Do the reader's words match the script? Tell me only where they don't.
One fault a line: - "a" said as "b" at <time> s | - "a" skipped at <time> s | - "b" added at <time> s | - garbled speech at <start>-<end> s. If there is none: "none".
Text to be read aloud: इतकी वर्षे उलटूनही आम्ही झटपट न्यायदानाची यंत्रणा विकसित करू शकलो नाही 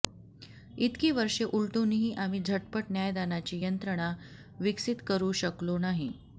none